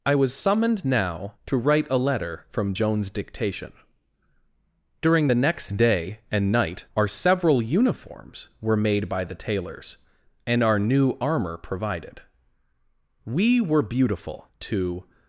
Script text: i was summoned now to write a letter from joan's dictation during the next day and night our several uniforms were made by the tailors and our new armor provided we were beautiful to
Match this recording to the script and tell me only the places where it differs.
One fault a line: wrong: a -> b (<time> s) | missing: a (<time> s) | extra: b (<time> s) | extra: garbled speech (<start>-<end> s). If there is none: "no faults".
no faults